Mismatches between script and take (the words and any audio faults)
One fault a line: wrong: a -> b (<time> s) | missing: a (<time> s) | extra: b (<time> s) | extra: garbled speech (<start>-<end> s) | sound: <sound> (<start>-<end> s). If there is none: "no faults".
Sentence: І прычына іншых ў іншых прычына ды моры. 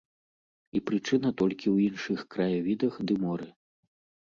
wrong: іншых -> толькі (1.4 s)
wrong: прычына -> краявідах (2.4 s)